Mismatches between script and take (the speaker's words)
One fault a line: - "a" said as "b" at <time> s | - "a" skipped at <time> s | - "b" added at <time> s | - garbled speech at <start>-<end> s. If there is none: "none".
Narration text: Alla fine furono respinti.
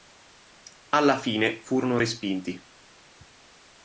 none